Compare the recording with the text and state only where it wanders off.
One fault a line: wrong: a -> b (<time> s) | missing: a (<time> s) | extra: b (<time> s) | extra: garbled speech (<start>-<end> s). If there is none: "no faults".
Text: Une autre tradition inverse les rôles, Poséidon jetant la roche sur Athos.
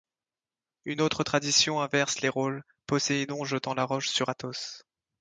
no faults